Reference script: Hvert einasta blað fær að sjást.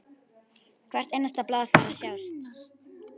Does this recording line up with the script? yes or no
yes